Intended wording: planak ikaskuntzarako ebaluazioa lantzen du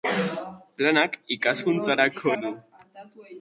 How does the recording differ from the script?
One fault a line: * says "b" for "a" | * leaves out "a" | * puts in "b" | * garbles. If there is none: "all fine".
* leaves out "ebaluazioa lantzen"